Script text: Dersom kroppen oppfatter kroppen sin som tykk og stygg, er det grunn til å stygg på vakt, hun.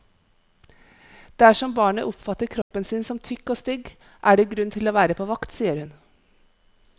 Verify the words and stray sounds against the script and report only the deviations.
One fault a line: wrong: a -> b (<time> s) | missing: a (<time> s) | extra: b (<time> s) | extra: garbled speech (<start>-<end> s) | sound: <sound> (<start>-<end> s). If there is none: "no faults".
wrong: kroppen -> barnet (1.7 s)
sound: dropout (2.6-2.7 s)
wrong: stygg -> være (5.0 s)
extra: sier (5.6 s)